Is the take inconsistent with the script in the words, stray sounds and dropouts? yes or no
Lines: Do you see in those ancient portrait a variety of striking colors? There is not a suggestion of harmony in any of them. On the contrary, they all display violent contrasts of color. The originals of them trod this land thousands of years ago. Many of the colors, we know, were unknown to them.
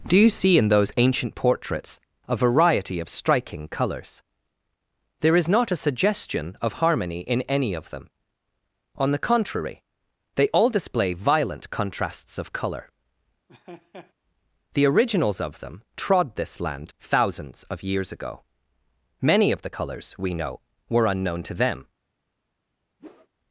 yes